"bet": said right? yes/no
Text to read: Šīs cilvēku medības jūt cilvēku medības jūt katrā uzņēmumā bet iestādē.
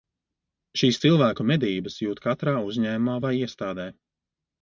no